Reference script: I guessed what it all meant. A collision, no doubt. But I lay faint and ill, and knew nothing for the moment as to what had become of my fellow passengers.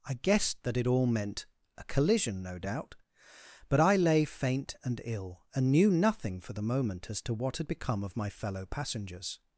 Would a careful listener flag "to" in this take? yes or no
no